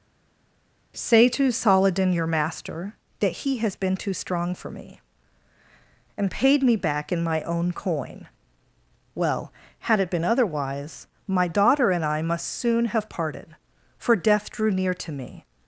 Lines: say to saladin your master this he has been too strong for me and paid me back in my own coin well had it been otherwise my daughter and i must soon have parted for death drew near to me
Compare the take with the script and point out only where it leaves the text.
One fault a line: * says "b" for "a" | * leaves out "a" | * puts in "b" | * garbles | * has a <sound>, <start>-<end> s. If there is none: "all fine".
* says "that" for "this"